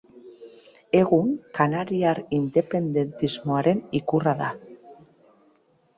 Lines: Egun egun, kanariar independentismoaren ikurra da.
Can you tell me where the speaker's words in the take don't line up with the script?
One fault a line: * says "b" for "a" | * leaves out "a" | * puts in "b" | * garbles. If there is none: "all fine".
* leaves out "egun"